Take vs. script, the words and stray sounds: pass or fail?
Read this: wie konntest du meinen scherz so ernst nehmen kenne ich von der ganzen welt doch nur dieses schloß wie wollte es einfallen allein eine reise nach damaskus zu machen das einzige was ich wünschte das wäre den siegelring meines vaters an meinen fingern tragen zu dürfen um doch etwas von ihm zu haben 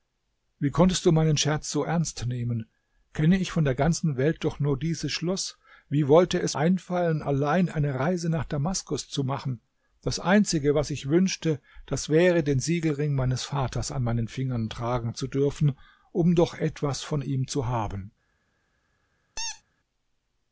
fail